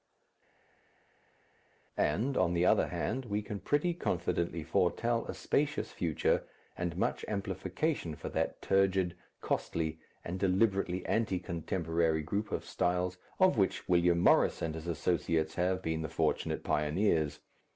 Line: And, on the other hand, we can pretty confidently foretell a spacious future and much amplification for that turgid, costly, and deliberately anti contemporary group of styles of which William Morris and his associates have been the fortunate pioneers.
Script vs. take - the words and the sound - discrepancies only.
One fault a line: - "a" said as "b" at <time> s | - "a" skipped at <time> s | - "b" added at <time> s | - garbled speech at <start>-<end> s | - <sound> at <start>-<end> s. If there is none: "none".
none